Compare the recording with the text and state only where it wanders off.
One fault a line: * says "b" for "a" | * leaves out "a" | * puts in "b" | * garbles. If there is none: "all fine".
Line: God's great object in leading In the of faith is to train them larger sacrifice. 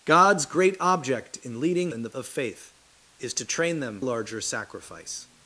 all fine